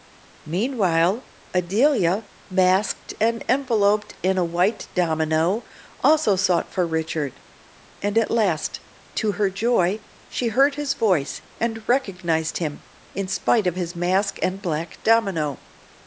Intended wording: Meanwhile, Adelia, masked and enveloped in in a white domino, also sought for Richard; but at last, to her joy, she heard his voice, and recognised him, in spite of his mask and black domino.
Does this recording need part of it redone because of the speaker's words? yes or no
yes